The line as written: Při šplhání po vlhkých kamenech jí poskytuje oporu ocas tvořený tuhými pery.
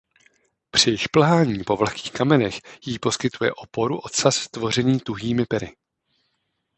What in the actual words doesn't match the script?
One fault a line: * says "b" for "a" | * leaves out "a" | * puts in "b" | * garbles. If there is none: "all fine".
all fine